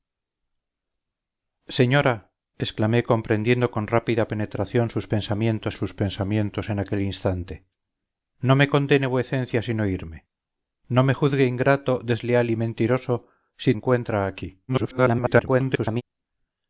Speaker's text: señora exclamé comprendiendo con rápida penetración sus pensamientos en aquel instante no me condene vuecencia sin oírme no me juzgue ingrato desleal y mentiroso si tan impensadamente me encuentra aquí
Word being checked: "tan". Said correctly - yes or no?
no